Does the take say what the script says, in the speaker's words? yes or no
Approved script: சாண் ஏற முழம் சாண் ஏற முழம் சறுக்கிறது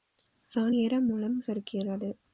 no